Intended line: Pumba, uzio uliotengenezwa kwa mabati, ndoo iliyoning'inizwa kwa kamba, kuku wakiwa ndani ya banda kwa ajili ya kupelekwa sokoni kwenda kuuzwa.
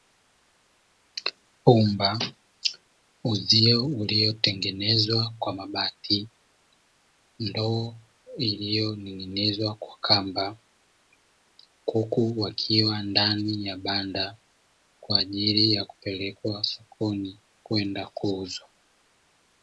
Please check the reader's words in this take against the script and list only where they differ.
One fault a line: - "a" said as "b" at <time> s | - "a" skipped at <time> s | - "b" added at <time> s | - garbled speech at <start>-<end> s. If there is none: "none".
none